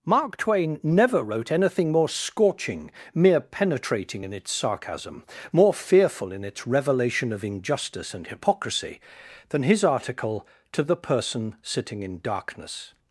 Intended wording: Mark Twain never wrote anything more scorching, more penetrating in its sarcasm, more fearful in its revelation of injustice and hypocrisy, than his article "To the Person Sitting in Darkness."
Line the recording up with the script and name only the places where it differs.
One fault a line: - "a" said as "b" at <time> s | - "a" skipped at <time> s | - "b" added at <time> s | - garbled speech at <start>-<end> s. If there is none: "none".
- "more" said as "mere" at 3.1 s